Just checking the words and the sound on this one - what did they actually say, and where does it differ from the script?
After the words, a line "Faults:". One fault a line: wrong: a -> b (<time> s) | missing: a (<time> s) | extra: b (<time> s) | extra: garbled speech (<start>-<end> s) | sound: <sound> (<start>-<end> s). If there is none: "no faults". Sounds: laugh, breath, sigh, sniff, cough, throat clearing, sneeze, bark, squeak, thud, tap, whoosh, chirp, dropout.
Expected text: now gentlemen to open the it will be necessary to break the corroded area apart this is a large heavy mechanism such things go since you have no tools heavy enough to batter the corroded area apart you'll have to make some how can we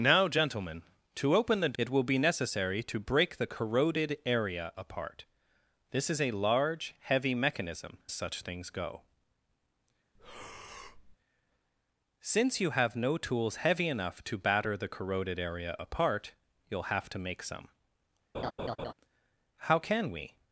now gentlemen to open the it will be necessary to break the corroded area apart this is a large heavy mechanism such things go since you have no tools heavy enough to batter the corroded area apart you'll have to make some how can we
Faults:
sound: breath (10.1-11.2 s)
sound: laugh (18.3-18.9 s)